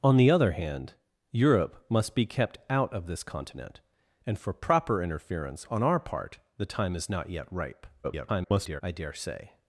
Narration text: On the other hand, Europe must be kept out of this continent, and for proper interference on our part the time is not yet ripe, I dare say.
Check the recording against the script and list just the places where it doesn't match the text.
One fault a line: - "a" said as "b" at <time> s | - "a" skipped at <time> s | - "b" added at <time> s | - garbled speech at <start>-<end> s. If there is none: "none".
- garbled speech at 8.0-8.8 s